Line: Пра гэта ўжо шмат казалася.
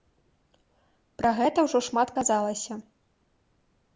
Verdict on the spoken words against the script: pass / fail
pass